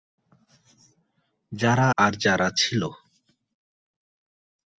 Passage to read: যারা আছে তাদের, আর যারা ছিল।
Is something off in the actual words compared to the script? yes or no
yes